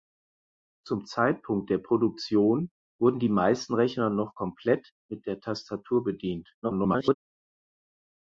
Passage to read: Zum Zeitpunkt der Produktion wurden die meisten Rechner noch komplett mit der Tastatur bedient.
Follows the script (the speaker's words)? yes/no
no